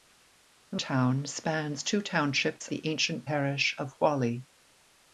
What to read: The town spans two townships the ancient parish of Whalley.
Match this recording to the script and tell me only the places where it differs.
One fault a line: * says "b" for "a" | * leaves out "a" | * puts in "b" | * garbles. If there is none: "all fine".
all fine